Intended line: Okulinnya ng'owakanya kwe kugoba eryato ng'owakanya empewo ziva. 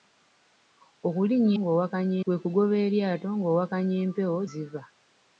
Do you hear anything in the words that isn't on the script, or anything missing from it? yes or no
no